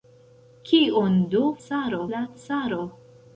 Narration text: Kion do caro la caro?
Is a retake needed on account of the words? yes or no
no